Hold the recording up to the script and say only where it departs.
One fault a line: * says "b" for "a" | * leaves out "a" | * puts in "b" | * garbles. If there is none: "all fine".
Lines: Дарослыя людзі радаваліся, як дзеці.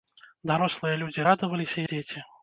* leaves out "як"